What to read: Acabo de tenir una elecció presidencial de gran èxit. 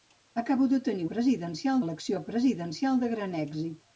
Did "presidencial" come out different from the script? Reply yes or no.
no